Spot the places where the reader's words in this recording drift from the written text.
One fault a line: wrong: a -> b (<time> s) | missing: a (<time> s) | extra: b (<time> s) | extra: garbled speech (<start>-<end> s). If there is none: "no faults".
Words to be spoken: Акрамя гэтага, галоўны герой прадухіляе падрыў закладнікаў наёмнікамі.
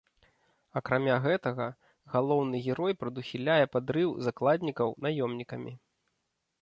no faults